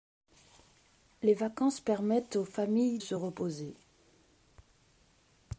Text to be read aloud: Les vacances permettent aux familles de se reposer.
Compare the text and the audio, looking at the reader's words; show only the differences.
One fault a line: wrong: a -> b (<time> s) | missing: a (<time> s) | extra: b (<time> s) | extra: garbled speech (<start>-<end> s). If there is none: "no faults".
missing: de (3.0 s)